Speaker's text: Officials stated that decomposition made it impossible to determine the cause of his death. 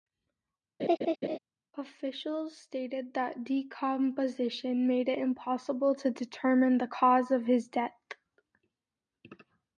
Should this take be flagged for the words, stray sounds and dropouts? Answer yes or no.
yes